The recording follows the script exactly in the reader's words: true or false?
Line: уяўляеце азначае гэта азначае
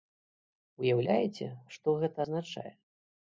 false